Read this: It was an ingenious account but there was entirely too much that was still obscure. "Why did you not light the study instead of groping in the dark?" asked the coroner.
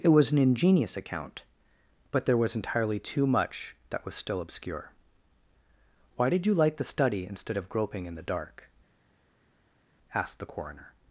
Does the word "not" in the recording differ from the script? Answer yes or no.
yes